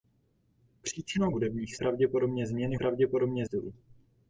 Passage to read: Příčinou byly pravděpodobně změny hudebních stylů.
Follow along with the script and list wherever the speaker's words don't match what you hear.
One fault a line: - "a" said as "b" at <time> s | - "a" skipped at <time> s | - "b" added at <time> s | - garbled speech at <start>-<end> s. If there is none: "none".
- "byly" said as "hudebních" at 1.3 s
- "hudebních" said as "pravděpodobně" at 2.7 s